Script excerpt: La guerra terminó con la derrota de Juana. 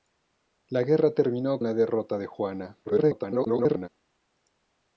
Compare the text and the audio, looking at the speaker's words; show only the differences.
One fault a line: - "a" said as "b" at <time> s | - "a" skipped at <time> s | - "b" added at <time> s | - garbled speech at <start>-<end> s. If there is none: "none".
- "con" skipped at 1.6 s
- garbled speech at 2.8-3.9 s